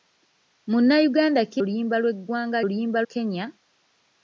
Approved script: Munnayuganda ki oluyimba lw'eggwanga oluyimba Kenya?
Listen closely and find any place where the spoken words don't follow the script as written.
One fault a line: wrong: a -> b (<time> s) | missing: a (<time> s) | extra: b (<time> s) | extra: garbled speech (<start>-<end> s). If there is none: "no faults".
no faults